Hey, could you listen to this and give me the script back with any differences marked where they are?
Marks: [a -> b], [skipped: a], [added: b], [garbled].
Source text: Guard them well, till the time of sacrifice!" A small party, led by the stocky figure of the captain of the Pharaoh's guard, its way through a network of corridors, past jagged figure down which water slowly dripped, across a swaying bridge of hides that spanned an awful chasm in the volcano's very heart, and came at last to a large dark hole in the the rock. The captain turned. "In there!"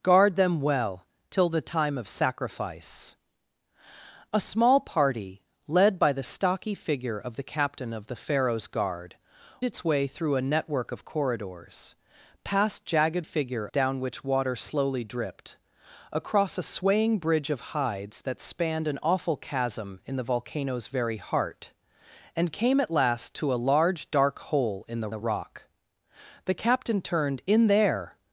Guard them well, till the time of sacrifice!" A small party, led by the stocky figure of the captain of the Pharaoh's guard, its way through a network of corridors, past jagged figure down which water slowly dripped, across a swaying bridge of hides that spanned an awful chasm in the volcano's very heart, and came at last to a large dark hole in the the rock. The captain turned. "In there!"